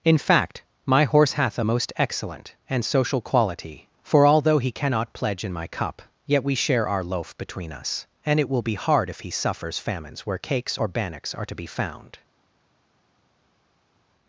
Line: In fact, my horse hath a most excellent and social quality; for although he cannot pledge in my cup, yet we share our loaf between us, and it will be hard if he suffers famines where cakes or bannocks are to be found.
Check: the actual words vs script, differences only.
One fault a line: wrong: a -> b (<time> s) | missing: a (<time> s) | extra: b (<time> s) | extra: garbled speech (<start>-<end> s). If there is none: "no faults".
no faults